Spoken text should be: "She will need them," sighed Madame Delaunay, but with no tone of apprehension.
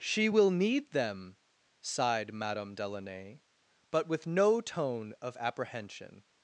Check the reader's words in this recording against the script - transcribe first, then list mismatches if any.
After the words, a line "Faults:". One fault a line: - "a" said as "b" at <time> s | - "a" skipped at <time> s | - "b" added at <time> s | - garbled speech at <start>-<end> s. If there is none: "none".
"She will need them," sighed Madame Delaunay, but with no tone of apprehension.
Faults:
none